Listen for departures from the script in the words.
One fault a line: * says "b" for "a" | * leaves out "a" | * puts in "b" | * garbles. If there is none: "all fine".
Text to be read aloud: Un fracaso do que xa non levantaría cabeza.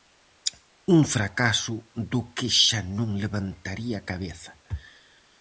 all fine